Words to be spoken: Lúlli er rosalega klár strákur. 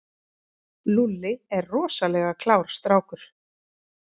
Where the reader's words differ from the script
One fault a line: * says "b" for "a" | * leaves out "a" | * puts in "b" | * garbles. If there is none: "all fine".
all fine